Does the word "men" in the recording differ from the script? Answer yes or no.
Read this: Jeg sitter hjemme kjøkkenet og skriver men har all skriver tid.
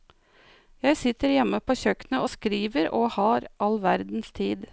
yes